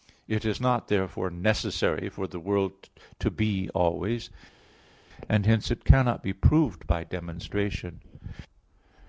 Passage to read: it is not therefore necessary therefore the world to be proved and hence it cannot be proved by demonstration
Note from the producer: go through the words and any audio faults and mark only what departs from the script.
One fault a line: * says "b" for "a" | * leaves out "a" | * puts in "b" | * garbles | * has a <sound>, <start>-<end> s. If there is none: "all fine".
* says "for" for "therefore"
* says "always" for "proved"